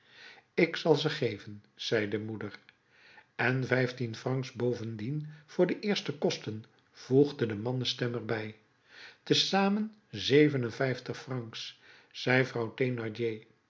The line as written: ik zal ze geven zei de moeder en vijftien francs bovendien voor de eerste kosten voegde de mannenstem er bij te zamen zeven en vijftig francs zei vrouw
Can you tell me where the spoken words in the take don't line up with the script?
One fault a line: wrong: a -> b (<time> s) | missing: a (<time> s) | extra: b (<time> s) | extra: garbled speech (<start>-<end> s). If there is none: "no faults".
no faults